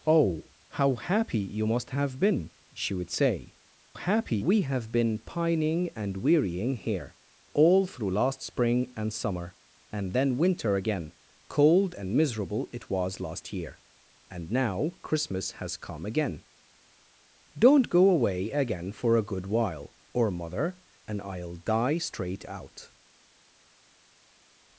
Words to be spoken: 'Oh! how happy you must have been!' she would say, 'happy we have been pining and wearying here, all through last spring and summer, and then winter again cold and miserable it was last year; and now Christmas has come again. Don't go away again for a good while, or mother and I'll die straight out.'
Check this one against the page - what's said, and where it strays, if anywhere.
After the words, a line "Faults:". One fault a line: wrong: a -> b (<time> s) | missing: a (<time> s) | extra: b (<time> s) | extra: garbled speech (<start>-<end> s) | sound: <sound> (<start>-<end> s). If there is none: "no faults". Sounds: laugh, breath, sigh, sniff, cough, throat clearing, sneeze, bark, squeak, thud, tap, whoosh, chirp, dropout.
'Oh! how happy you must have been!' she would say, 'happy we have been pining and wearying here, all through last spring and summer, and then winter again cold and miserable it was last year; and now Christmas has come again. Don't go away again for a good while, or mother and I'll die straight out.'
Faults:
no faults